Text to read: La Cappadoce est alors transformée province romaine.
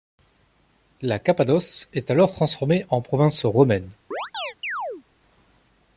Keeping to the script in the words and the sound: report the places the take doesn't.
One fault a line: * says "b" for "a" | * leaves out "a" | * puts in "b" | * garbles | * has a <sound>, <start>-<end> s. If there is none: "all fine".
* puts in "en"
* has a chirp, 4.1-5.0 s